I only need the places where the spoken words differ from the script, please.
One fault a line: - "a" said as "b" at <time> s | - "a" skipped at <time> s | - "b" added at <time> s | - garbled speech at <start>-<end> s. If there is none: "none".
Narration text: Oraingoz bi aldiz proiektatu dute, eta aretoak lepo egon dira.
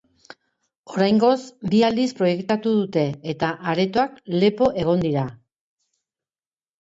none